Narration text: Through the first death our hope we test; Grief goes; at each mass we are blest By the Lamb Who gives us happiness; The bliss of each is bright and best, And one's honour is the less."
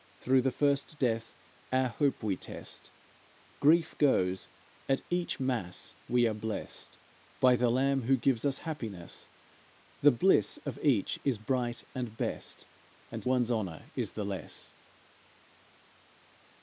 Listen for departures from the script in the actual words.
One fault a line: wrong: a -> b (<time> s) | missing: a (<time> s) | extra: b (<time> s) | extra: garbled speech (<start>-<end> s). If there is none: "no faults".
no faults